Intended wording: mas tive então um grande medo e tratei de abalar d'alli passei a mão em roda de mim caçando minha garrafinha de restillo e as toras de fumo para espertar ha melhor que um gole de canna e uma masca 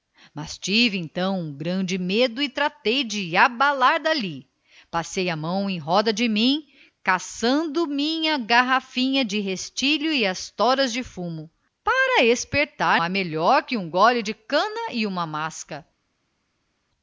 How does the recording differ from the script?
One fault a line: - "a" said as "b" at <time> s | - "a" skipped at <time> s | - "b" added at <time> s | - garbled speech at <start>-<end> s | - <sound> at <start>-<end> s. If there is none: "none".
none